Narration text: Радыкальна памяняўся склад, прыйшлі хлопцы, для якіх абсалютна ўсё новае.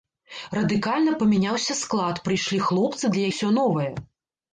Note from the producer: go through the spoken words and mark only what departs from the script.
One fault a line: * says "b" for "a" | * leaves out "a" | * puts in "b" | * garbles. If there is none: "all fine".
* leaves out "якіх абсалютна"